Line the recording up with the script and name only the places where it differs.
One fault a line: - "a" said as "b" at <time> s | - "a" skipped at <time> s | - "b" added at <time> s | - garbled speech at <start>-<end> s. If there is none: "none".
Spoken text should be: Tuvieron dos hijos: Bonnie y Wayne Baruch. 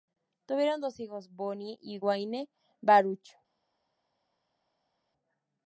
none